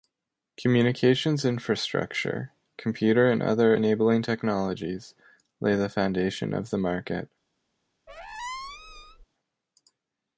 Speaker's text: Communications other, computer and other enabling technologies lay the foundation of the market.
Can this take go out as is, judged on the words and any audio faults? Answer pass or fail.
fail